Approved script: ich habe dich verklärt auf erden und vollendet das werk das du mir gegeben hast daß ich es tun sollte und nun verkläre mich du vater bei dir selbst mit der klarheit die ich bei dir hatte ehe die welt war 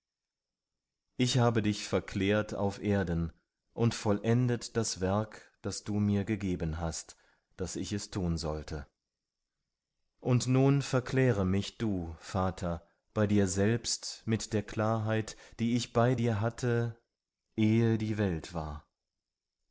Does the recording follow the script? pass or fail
pass